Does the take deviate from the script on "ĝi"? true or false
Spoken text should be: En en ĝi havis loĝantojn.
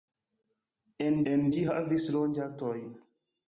false